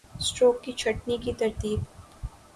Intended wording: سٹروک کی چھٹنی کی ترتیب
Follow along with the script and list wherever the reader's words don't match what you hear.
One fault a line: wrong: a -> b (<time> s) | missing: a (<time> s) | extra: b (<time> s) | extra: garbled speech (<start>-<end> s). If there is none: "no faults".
no faults